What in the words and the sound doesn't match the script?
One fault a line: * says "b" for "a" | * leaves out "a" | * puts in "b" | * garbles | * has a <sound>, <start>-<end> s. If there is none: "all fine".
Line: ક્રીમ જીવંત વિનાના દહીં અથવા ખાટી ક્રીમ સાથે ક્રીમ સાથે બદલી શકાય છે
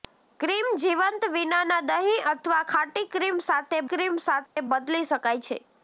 * has a dropout, 4.5-4.6 s